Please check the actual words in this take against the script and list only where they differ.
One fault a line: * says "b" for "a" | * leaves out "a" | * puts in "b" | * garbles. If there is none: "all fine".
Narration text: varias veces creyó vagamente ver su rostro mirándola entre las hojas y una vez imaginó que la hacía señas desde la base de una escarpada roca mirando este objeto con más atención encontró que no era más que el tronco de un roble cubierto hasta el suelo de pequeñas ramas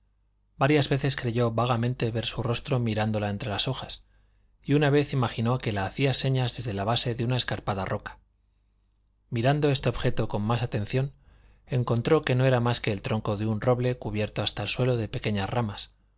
all fine